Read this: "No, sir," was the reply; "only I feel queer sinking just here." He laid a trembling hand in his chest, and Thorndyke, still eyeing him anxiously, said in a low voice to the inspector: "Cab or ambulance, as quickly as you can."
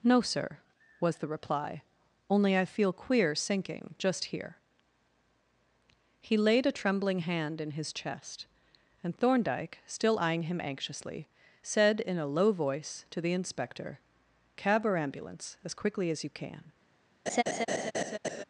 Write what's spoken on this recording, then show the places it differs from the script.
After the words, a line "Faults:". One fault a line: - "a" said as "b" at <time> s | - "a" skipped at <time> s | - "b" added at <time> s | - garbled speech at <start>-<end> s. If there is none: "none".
"No, sir," was the reply; "only I feel queer sinking just here." He laid a trembling hand in his chest, and Thorndyke, still eyeing him anxiously, said in a low voice to the inspector: "Cab or ambulance, as quickly as you can."
Faults:
none